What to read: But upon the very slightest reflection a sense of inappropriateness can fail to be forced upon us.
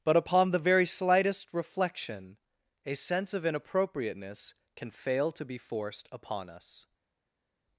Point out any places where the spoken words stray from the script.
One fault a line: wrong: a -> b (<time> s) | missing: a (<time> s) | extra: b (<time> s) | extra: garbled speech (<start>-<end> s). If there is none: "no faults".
no faults